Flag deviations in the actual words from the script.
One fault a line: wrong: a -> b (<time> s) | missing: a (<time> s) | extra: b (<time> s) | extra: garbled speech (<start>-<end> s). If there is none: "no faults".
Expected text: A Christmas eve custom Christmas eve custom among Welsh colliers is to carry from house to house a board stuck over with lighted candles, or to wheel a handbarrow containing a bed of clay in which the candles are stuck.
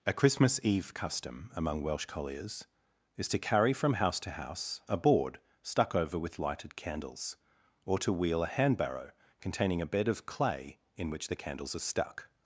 missing: Christmas eve custom (1.5 s)